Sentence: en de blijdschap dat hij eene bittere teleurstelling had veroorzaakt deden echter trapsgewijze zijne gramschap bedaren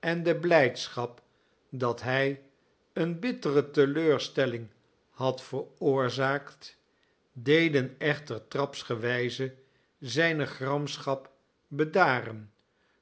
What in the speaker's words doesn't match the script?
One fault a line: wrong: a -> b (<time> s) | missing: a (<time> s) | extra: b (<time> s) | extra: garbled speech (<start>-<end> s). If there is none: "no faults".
no faults